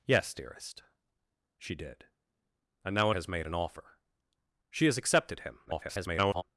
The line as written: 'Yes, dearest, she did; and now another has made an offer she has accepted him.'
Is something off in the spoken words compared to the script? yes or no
yes